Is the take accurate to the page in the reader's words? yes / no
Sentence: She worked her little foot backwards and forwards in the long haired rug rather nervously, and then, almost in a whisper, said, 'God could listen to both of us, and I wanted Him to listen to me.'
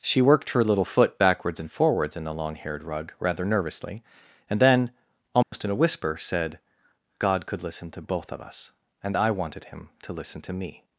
yes